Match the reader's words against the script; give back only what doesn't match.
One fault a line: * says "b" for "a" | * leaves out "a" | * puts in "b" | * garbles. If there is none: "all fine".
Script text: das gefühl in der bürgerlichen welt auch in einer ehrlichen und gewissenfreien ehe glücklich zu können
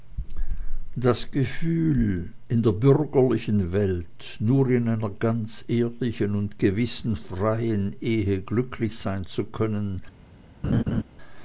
* says "nur" for "auch"
* puts in "ganz"
* puts in "sein"